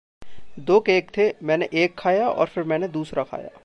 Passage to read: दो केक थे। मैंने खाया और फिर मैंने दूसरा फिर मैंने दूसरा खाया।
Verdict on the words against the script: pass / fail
fail